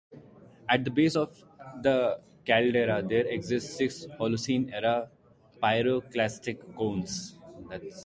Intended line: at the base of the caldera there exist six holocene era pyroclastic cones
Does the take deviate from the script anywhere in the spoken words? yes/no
no